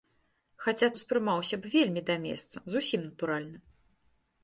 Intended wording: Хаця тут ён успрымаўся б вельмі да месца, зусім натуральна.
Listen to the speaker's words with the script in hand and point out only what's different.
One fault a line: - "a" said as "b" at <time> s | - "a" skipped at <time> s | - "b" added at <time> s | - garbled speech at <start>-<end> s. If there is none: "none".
- "тут ён" skipped at 0.9 s